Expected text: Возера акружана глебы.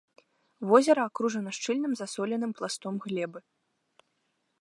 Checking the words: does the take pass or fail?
fail